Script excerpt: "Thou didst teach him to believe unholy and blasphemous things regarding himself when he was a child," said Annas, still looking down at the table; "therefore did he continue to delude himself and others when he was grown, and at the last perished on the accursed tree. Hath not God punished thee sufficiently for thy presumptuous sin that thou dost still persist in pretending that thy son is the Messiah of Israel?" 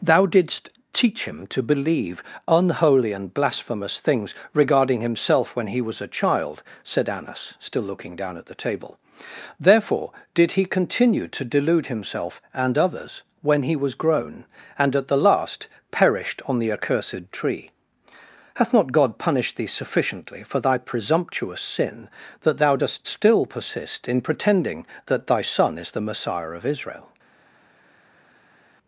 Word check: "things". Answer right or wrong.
right